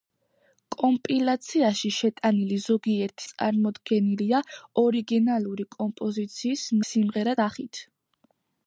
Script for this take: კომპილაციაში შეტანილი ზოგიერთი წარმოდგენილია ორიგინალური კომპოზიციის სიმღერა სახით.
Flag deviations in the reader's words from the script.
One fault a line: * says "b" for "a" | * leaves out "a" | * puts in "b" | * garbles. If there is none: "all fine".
all fine